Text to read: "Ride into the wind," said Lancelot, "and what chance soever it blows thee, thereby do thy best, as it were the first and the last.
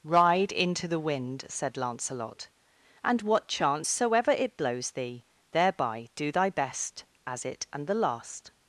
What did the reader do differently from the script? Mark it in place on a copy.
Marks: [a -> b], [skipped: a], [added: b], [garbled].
"Ride into the wind," said Lancelot, "and what chance soever it blows thee, thereby do thy best, as it [skipped: were the first] and the last.